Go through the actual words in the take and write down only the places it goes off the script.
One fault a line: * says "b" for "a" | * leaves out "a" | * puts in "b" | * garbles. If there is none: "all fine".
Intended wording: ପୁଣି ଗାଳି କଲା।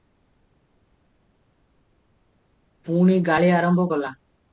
* puts in "ଆରମ୍ଭ"